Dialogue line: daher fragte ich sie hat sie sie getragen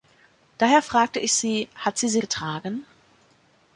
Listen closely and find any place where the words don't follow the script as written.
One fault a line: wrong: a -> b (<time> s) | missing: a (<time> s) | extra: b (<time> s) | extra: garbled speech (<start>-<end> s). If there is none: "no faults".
no faults